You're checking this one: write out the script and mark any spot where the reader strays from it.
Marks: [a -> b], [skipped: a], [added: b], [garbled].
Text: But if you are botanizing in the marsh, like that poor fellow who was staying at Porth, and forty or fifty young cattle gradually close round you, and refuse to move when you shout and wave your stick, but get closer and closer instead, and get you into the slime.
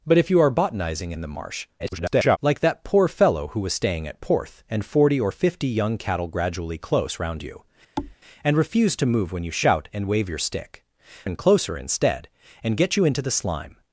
But if you are botanizing in the marsh, [garbled] like that poor fellow who was staying at Porth, and forty or fifty young cattle gradually close round you, and refuse to move when you shout and wave your stick, [skipped: but get closer] and closer instead, and get you into the slime.